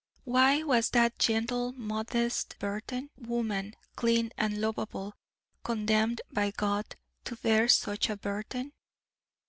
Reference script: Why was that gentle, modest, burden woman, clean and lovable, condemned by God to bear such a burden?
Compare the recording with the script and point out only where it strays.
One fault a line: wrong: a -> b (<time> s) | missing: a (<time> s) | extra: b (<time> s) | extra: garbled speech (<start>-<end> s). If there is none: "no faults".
no faults